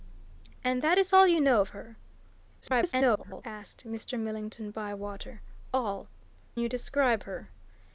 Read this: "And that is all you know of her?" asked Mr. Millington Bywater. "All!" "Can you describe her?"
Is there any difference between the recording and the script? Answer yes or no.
yes